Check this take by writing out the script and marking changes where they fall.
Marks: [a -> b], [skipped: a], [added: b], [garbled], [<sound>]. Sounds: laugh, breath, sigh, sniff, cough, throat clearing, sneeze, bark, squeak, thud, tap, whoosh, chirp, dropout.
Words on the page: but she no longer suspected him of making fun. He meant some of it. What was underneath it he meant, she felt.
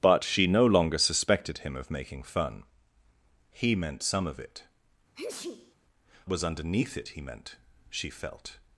but she no longer suspected him of making fun. He meant some of it. [skipped: What] [sneeze] was underneath it he meant, she felt.